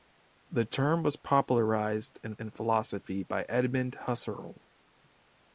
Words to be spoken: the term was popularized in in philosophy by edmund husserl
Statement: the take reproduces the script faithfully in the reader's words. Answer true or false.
true